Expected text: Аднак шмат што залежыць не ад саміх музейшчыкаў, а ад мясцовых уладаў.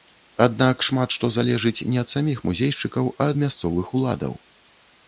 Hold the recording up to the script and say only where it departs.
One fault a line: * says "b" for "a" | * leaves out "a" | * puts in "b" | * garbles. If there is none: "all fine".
all fine